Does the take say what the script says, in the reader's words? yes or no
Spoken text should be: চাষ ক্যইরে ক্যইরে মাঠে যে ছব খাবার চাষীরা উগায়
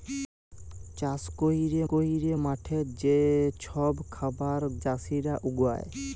yes